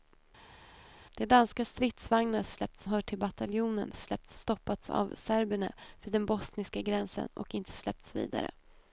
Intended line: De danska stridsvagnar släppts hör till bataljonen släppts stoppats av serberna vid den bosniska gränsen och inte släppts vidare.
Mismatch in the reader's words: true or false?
false